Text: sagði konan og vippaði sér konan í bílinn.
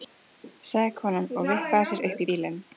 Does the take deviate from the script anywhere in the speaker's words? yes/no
yes